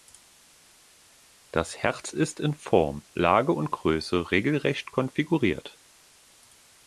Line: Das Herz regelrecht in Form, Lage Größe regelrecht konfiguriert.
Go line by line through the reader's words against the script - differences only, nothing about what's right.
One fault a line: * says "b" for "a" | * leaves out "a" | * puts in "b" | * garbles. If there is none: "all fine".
* says "ist" for "regelrecht"
* puts in "und"